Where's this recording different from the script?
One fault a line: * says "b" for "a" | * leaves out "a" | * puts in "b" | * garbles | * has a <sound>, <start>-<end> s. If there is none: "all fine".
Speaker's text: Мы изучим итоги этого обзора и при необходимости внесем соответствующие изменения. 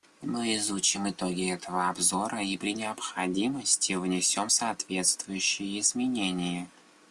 all fine